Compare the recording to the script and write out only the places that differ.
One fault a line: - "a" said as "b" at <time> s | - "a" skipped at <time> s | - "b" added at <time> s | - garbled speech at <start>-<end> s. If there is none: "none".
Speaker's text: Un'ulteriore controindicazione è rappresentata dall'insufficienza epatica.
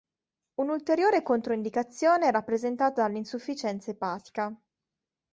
none